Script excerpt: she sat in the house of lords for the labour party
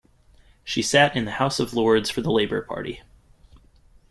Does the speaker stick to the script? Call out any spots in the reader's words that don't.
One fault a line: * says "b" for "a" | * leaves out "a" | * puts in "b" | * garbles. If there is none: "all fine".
all fine